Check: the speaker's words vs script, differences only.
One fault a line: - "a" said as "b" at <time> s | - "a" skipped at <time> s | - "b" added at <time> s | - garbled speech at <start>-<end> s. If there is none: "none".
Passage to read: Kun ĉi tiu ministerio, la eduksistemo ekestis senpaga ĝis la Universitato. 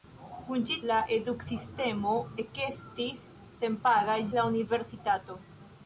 - "tiu ministerio" skipped at 0.8 s
- "ĝis" skipped at 4.2 s